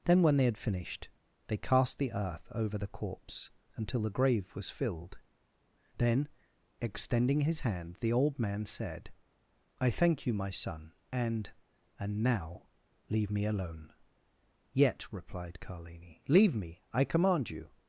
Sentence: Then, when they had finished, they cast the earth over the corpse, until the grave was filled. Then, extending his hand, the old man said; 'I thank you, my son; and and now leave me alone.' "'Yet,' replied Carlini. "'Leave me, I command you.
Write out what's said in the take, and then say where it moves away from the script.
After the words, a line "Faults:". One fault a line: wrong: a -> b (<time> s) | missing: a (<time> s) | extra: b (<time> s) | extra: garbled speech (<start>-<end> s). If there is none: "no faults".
Then, when they had finished, they cast the earth over the corpse, until the grave was filled. Then, extending his hand, the old man said; 'I thank you, my son; and and now leave me alone.' "'Yet,' replied Carlini. "'Leave me, I command you.
Faults:
no faults